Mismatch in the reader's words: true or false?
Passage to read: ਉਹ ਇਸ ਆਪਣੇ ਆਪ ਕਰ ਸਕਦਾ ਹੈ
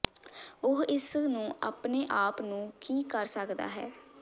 true